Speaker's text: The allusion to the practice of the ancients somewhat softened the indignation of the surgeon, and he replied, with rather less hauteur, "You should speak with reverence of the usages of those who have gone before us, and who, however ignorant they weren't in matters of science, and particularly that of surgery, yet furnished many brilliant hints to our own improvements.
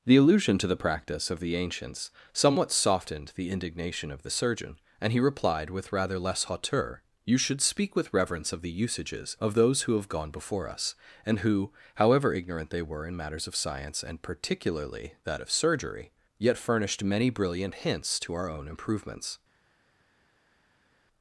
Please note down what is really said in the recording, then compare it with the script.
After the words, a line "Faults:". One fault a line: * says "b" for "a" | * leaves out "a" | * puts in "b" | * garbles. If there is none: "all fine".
The allusion to the practice of the ancients somewhat softened the indignation of the surgeon, and he replied, with rather less hauteur, "You should speak with reverence of the usages of those who have gone before us, and who, however ignorant they were in matters of science, and particularly that of surgery, yet furnished many brilliant hints to our own improvements.
Faults:
* says "were" for "weren't"